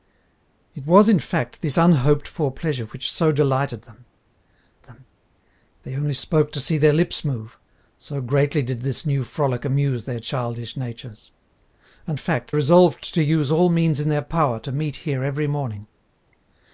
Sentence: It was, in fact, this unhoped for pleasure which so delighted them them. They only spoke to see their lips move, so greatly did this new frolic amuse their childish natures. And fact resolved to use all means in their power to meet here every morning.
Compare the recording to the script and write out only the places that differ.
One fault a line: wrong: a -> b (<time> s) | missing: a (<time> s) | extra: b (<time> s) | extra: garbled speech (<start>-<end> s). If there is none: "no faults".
no faults